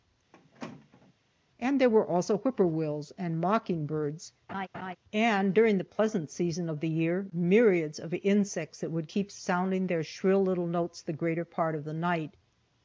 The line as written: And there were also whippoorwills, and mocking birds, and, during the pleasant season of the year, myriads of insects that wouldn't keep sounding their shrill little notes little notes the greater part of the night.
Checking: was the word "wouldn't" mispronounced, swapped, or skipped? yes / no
yes